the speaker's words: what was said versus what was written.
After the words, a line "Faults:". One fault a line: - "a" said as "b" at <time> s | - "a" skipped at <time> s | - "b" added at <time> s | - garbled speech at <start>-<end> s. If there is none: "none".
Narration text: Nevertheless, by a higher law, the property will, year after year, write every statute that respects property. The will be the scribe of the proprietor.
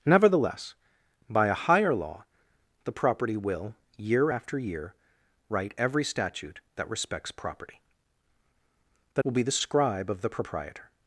Nevertheless, by a higher law, the property will, year after year, write every statute that respects property. The will be the scribe of the proprietor.
Faults:
none